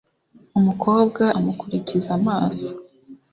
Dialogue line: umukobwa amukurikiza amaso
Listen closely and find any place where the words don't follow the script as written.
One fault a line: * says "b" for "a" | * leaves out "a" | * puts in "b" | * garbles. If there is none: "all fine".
all fine